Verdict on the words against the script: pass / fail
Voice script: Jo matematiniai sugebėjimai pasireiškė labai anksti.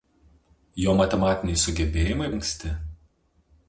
fail